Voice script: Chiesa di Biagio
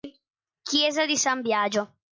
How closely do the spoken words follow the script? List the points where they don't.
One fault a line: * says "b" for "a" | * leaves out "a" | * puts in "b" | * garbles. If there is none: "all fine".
* puts in "San"